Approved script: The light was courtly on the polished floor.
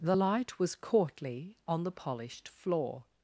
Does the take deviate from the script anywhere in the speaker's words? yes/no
no